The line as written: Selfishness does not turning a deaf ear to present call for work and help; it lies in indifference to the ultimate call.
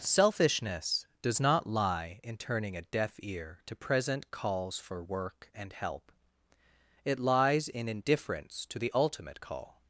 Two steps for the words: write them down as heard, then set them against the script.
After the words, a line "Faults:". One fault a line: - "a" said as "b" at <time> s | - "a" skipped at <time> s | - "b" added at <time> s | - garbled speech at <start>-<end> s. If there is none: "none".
Selfishness does not lie in turning a deaf ear to present calls for work and help; it lies in indifference to the ultimate call.
Faults:
- "lie in" added at 1.7 s
- "call" said as "calls" at 4.3 s